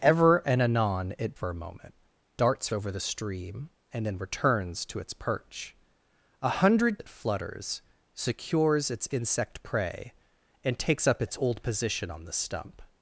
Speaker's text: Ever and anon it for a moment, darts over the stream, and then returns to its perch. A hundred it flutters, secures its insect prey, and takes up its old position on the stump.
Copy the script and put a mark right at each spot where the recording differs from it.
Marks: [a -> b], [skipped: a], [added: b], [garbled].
Ever and anon it for a moment, darts over the stream, and then returns to its perch. A hundred it flutters, secures its insect prey, and takes up its old position on the stump.